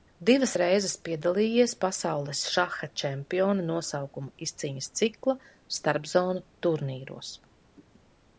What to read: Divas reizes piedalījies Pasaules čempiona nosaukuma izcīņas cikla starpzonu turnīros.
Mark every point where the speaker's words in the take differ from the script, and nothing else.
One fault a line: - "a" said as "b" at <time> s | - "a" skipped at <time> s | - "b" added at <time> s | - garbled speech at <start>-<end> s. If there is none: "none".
- "šaha" added at 2.6 s